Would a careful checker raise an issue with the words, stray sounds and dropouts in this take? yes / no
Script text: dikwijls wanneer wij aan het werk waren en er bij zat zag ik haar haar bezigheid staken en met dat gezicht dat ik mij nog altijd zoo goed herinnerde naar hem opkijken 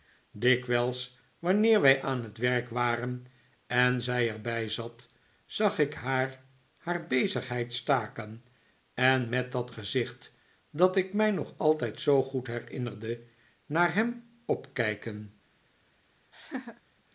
yes